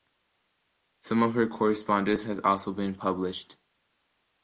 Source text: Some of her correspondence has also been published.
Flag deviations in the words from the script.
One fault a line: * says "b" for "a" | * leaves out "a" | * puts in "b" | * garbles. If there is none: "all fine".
all fine